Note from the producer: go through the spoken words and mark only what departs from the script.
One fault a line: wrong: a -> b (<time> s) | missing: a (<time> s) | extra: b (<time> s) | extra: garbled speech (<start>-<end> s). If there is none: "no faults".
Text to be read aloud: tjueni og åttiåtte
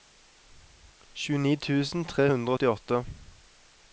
extra: tusen tre hundre (1.7 s)